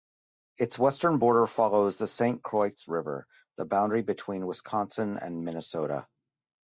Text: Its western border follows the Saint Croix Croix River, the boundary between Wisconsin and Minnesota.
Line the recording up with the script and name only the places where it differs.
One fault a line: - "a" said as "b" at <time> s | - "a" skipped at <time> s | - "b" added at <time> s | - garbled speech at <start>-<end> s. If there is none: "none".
- "Croix" skipped at 2.7 s